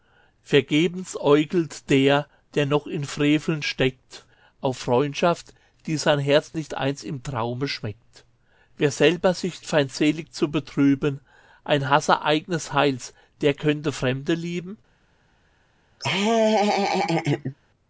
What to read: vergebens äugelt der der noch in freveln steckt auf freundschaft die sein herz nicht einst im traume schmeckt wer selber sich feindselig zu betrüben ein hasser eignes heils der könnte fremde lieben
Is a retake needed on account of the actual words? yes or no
no